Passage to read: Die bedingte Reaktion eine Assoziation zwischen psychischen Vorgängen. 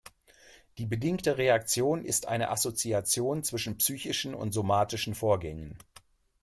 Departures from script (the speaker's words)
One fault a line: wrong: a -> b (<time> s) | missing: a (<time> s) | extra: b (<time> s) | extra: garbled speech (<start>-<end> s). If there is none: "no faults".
extra: ist (2.0 s)
extra: und somatischen (4.3 s)